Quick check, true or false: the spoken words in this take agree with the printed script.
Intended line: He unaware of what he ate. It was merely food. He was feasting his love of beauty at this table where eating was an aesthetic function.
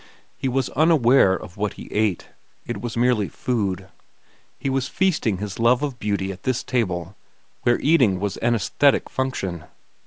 false